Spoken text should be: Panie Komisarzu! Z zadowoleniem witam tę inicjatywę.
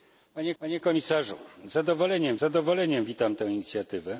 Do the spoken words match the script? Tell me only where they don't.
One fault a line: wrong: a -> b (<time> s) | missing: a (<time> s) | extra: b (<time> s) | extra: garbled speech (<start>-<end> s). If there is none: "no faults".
extra: panie (0.6 s)
extra: zadowoleniem (2.4 s)